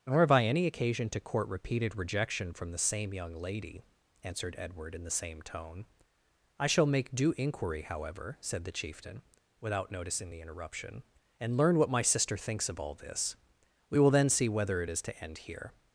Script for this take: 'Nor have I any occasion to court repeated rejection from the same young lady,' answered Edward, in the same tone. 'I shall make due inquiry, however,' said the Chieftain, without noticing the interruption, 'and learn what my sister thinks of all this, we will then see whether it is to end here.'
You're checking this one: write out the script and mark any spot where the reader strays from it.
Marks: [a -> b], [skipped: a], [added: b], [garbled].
'Nor have I any occasion to court repeated rejection from the same young lady,' answered Edward, in the same tone. 'I shall make due inquiry, however,' said the Chieftain, without noticing the interruption, 'and learn what my sister thinks of all this, we will then see whether it is to end here.'